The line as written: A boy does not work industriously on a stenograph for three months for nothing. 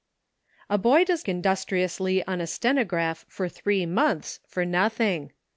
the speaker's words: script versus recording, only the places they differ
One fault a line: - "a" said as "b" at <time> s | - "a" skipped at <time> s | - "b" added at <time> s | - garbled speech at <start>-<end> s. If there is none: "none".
- "not work" skipped at 1.3 s